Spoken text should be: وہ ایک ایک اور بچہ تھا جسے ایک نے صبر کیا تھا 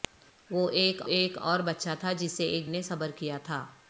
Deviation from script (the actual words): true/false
false